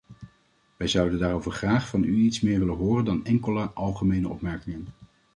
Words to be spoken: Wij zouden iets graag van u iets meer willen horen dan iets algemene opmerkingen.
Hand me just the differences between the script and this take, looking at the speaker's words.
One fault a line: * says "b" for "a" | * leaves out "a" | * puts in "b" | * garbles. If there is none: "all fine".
* says "daarover" for "iets"
* says "enkele" for "iets"